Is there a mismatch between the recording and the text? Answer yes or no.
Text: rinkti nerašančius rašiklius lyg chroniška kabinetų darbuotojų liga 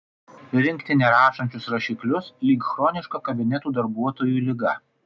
no